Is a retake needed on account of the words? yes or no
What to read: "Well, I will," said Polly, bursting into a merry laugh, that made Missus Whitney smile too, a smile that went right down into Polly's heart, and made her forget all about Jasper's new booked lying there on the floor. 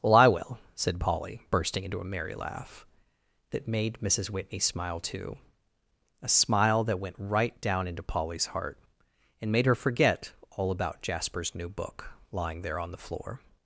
yes